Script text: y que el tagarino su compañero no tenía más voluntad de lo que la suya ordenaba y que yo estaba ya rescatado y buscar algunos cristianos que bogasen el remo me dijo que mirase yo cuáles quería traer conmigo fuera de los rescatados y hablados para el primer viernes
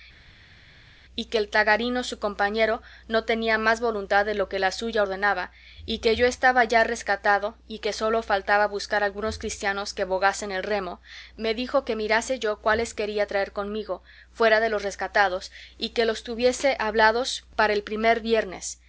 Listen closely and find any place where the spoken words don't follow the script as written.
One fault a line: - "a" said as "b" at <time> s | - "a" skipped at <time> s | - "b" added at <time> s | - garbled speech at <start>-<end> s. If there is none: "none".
- "que sólo faltaba" added at 7.8 s
- "que los tuviese" added at 15.9 s